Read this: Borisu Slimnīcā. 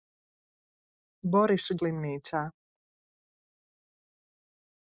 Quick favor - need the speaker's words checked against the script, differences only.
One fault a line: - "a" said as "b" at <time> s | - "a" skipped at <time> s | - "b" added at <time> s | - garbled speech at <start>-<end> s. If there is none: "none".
none